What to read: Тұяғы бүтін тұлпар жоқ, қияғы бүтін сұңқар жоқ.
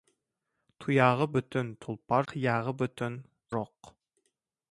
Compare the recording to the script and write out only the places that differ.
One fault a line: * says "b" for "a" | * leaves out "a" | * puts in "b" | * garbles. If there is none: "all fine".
* leaves out "жоқ"
* leaves out "сұңқар"